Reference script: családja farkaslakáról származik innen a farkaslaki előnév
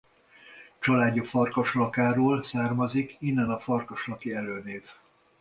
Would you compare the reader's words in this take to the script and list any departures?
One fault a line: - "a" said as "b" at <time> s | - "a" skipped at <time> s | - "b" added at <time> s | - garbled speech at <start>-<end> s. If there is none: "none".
none